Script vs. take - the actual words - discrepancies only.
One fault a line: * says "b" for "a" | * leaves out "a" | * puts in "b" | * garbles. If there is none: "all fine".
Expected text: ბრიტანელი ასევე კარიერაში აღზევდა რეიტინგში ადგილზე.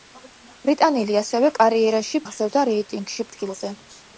all fine